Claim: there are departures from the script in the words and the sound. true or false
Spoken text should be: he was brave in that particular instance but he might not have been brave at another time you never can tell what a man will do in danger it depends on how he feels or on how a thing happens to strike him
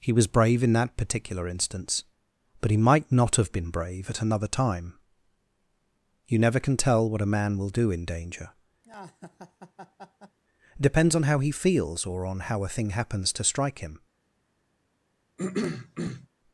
true